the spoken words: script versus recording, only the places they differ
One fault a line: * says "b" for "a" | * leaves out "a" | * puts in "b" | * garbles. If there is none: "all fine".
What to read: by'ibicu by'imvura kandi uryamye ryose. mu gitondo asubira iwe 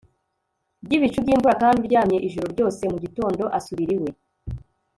* puts in "ijoro"